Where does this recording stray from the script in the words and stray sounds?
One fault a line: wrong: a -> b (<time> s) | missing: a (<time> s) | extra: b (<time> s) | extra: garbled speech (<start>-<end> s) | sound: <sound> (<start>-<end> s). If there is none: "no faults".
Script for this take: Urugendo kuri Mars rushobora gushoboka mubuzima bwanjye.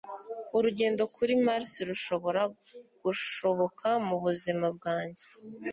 no faults